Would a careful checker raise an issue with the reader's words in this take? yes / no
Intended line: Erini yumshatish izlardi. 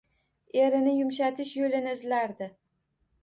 yes